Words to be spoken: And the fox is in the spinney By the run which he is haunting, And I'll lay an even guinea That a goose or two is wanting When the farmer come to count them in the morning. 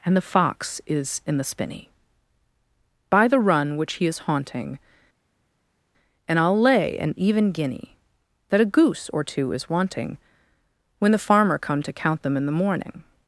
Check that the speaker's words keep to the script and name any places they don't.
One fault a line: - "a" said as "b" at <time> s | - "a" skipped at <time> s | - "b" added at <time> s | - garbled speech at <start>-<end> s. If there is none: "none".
none